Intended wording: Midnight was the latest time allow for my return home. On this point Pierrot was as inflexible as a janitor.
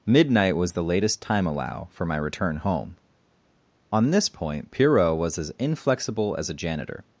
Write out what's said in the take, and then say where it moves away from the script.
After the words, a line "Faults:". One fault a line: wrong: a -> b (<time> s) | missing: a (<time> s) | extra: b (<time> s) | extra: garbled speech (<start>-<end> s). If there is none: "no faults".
Midnight was the latest time allow for my return home. On this point Pierrot was as inflexible as a janitor.
Faults:
no faults